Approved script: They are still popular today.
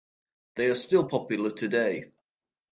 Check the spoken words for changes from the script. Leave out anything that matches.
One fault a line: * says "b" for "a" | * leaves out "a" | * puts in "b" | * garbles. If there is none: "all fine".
all fine